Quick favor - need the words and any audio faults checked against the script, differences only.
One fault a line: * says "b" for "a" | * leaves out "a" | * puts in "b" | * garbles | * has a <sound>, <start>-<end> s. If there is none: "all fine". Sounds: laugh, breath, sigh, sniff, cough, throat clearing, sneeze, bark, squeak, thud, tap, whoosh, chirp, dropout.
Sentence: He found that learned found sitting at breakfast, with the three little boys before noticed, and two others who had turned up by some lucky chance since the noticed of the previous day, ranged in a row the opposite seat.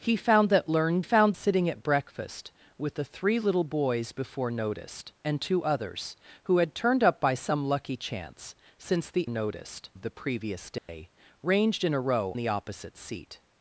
* has a dropout, 10.8-10.9 s